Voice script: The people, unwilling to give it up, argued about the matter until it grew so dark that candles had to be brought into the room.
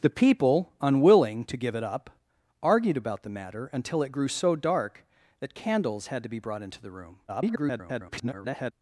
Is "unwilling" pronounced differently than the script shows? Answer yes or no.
no